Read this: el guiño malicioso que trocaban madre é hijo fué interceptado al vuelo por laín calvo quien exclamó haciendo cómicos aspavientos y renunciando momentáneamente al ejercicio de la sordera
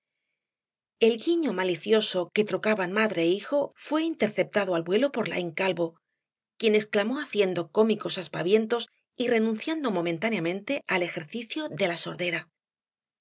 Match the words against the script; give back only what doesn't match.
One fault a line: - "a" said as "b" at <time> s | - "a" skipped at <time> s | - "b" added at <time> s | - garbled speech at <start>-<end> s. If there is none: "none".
none